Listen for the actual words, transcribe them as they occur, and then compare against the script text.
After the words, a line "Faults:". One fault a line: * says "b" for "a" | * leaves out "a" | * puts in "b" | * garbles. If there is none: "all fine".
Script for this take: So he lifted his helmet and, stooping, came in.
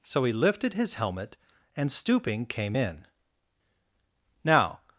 So he lifted his helmet and, stooping, came in. Now
Faults:
* puts in "Now"